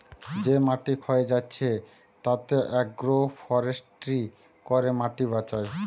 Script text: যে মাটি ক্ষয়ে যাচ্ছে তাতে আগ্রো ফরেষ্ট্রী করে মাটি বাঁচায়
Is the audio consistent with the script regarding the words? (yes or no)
yes